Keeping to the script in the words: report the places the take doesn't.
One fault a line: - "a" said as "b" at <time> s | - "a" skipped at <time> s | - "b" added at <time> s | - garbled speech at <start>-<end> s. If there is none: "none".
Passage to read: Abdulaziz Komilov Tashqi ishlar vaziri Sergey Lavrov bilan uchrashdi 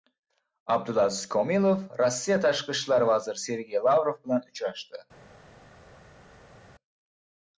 - "Rossiya" added at 2.0 s